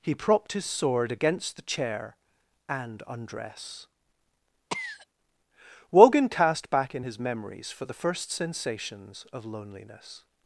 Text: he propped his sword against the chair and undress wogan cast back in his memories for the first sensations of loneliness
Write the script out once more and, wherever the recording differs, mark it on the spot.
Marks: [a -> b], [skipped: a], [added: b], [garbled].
he propped his sword against the chair and undress wogan cast back in his memories for the first sensations of loneliness